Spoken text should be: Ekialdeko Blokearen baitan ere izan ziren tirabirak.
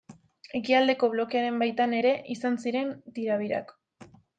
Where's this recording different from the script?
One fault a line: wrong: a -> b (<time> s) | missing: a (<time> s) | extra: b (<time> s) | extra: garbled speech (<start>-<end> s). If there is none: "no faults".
no faults